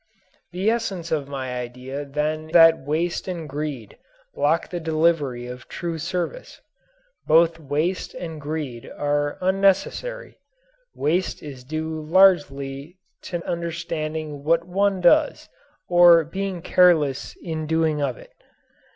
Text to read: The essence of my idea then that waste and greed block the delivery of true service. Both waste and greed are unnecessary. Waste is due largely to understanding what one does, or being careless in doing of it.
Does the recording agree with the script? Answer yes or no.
yes